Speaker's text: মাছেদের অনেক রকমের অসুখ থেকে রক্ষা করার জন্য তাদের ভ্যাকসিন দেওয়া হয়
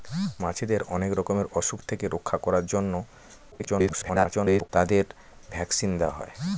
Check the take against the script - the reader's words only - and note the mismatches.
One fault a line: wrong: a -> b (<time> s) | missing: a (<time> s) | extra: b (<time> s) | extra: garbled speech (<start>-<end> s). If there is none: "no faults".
extra: garbled speech (3.5-4.7 s)